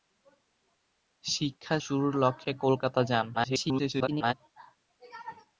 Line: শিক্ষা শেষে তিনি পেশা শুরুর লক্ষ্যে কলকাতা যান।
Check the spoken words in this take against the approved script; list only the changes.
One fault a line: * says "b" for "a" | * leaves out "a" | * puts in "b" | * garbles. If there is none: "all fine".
* leaves out "শেষে তিনি পেশা"
* garbles